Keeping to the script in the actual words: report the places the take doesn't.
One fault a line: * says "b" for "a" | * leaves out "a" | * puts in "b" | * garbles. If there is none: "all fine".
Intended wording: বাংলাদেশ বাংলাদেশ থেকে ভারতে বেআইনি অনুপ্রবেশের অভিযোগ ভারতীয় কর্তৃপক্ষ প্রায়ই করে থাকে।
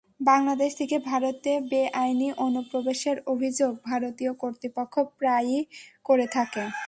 * leaves out "বাংলাদেশ"